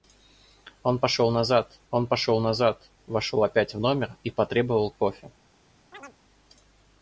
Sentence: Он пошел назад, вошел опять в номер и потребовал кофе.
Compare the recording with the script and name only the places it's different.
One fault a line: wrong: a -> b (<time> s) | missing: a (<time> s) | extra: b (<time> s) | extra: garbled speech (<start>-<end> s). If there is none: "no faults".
extra: он пошел назад (1.9 s)